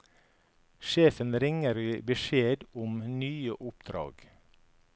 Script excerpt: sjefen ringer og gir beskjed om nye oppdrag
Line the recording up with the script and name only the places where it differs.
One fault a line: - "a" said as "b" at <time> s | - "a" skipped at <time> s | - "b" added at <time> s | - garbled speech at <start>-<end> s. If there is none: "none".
none